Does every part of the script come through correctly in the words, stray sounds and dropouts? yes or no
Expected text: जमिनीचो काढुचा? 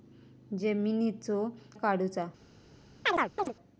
no